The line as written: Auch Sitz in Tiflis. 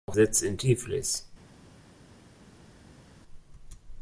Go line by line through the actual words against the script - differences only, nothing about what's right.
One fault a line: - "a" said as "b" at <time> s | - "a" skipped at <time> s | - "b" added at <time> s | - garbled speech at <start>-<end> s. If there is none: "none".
none